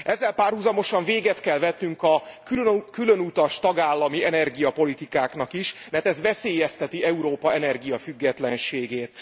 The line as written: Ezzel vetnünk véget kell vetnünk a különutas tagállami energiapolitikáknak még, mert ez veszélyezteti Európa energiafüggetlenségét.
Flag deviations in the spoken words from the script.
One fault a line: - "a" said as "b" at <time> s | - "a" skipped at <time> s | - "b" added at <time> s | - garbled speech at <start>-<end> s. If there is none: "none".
- "vetnünk" said as "párhuzamosan" at 0.3 s
- "még" said as "is" at 5.5 s